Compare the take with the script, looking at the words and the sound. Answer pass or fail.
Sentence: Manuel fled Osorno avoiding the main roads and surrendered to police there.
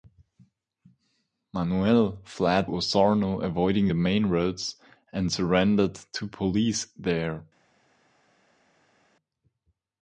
pass